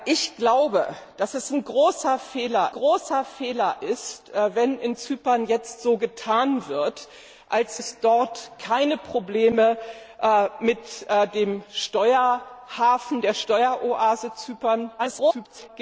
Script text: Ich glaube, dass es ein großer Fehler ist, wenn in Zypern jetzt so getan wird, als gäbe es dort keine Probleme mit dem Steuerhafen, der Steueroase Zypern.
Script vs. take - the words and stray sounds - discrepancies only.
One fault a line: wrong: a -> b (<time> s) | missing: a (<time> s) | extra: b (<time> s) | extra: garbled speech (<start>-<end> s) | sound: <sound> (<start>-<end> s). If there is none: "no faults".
extra: großer Fehler (2.7 s)
missing: gäbe (7.8 s)
extra: garbled speech (15.0-15.7 s)